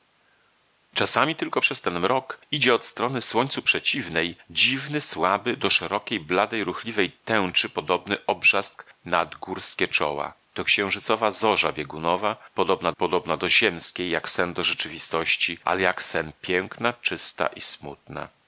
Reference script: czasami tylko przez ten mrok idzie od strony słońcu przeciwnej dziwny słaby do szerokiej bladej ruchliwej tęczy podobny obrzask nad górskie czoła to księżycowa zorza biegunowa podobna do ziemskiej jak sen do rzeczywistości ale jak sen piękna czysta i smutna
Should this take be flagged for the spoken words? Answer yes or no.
yes